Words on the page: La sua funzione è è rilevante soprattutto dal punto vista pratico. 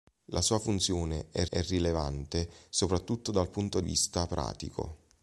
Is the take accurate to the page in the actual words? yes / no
yes